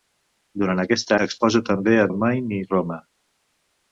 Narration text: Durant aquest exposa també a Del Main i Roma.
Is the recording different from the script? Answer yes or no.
no